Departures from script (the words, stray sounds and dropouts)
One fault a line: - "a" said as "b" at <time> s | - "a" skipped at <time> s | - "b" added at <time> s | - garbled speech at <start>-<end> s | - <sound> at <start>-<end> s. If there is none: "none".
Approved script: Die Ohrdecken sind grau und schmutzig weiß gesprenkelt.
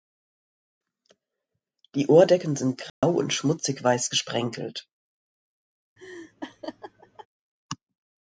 - dropout at 2.9-3.0 s
- laugh at 6.0-7.3 s